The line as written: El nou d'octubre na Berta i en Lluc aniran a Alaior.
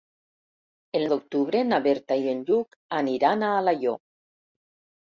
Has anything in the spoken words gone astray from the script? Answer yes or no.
yes